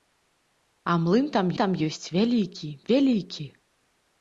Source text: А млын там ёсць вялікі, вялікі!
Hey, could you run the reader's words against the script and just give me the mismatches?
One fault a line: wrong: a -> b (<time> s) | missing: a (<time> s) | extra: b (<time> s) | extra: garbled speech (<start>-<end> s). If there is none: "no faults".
extra: там (1.6 s)